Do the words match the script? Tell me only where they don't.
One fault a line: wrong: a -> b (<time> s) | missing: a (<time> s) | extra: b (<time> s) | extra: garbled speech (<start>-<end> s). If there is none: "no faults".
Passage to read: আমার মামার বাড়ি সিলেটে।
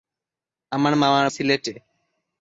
missing: বাড়ি (1.3 s)